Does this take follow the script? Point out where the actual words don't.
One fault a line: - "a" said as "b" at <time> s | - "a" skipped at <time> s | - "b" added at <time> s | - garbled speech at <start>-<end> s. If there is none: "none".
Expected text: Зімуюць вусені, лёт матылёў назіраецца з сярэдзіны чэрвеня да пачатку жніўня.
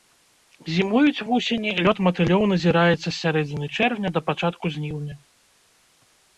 none